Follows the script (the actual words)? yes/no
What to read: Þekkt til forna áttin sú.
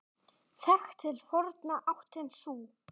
yes